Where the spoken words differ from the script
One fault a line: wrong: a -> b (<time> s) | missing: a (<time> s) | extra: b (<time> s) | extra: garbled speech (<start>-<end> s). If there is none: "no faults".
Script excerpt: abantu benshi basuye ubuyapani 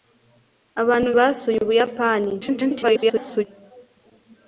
missing: benshi (1.1 s)
extra: garbled speech (2.4-3.4 s)